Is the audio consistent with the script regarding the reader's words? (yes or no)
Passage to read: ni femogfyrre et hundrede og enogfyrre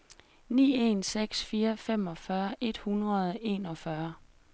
no